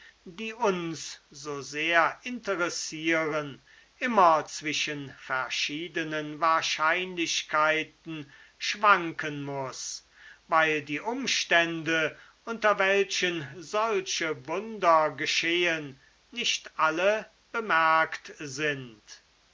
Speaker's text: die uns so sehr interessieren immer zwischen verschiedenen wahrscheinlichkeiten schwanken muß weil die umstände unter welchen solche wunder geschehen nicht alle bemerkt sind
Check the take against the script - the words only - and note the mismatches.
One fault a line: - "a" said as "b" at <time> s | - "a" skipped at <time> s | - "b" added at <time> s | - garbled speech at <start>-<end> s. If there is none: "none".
none